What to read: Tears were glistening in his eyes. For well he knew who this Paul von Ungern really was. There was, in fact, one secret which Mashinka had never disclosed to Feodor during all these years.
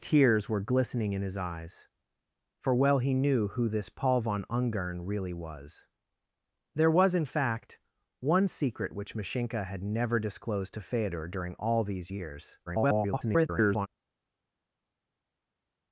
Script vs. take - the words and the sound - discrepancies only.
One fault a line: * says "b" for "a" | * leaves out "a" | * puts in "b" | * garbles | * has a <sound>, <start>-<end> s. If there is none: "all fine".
* garbles